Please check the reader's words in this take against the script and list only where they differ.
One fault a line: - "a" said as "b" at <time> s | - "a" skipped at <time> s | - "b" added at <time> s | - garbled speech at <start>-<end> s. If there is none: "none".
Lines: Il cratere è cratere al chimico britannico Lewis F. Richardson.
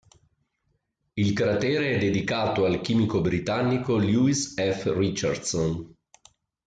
- "cratere" said as "dedicato" at 2.0 s